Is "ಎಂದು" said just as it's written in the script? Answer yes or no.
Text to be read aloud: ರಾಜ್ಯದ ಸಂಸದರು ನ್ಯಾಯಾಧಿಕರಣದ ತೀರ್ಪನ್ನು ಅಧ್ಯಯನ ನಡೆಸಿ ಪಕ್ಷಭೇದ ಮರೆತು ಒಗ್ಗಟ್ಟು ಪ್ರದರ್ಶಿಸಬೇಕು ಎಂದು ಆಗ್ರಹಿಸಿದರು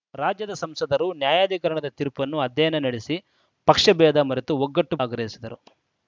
no